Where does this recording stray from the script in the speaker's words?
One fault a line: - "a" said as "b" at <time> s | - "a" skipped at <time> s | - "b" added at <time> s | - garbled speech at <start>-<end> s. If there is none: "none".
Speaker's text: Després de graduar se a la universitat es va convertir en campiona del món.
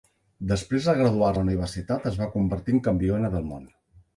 - "se" skipped at 1.3 s